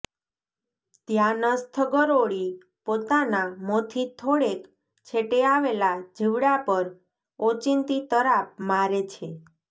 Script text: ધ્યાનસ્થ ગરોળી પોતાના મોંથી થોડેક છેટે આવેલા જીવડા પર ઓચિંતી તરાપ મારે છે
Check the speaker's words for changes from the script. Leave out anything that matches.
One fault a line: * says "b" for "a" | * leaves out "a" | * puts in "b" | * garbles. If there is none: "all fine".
all fine